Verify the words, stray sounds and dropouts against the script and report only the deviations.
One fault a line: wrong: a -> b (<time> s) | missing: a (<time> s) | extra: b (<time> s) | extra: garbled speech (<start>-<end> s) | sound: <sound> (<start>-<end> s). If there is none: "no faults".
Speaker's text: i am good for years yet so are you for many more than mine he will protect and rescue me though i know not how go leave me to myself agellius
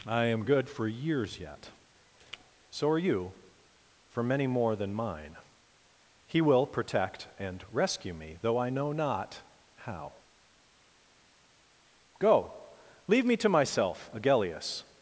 no faults